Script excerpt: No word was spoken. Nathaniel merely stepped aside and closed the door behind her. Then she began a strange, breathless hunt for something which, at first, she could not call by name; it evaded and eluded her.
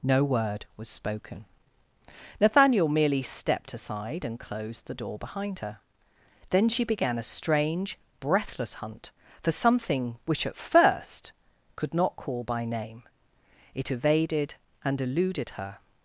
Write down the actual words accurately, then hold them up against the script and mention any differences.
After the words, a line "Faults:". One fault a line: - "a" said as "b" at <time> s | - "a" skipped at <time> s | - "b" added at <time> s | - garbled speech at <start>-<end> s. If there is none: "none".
No word was spoken. Nathaniel merely stepped aside and closed the door behind her. Then she began a strange, breathless hunt for something which, at first, could not call by name; it evaded and eluded her.
Faults:
- "she" skipped at 11.3 s